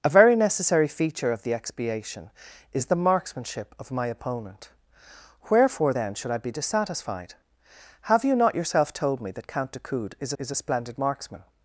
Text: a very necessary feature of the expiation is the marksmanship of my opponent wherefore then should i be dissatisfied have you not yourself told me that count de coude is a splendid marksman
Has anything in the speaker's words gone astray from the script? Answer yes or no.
yes